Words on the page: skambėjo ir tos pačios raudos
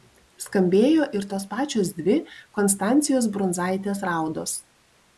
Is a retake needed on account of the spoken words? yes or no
yes